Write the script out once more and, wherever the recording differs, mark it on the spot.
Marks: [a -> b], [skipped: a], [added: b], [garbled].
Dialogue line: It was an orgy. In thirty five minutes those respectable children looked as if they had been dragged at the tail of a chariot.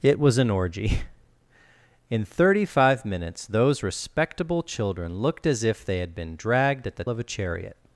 It was an orgy. In thirty five minutes those respectable children looked as if they had been dragged at the [skipped: tail] of a chariot.